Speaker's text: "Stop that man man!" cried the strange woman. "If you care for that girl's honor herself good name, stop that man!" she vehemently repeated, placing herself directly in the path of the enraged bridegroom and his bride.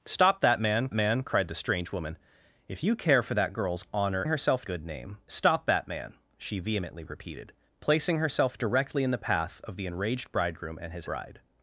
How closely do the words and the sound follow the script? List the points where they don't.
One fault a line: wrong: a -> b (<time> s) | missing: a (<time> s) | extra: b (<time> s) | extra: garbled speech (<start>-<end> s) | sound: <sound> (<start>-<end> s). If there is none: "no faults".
no faults